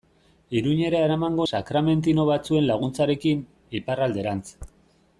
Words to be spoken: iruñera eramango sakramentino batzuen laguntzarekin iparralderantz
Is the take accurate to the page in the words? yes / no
yes